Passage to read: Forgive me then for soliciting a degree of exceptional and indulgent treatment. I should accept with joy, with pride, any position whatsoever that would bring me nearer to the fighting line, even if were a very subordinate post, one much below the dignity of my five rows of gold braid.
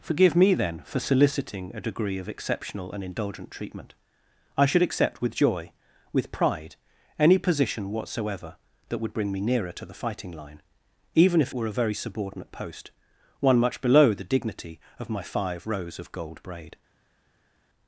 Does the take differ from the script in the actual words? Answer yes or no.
no